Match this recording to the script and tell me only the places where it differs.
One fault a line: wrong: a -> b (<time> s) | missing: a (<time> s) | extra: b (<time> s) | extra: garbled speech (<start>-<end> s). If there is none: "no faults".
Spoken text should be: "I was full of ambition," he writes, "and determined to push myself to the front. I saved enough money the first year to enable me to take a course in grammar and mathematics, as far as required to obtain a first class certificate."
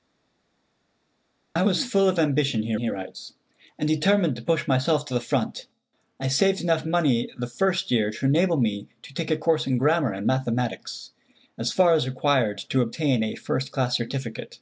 extra: he (2.7 s)